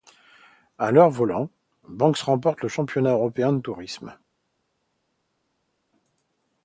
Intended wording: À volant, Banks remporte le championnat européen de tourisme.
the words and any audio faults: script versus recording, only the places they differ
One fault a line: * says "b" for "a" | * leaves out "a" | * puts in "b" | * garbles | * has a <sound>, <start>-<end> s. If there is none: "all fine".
* puts in "leur"